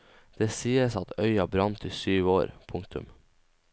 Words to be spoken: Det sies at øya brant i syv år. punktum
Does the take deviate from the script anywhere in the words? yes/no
no